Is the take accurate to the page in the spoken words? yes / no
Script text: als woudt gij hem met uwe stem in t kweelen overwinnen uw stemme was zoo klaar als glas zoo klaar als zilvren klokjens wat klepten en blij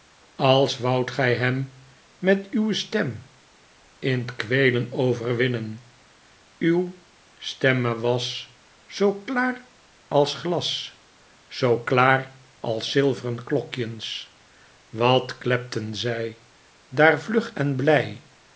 no